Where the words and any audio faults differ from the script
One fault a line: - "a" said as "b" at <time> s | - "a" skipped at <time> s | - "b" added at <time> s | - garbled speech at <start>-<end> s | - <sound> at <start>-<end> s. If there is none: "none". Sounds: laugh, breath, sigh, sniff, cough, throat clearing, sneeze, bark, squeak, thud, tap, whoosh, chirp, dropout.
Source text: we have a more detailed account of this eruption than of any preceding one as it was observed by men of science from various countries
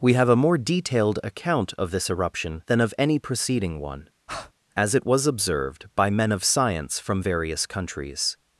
- breath at 4.3-4.5 s